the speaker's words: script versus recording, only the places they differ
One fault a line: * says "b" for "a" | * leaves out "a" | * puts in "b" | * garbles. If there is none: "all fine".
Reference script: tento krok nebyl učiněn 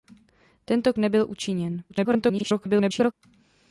* leaves out "krok"
* garbles